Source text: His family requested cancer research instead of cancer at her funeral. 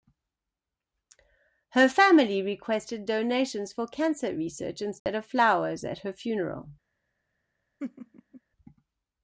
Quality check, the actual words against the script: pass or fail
fail